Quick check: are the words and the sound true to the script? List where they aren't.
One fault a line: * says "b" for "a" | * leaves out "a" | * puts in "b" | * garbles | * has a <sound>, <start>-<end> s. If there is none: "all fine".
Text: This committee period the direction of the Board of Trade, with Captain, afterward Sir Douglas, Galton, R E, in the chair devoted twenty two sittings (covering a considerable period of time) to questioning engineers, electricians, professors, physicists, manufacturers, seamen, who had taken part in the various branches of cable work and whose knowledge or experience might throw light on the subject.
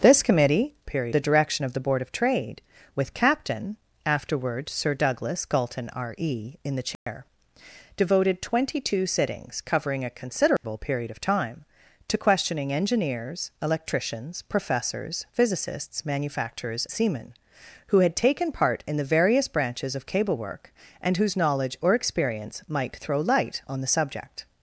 * has a dropout, 6.9-7.1 s
* has a dropout, 10.6-10.6 s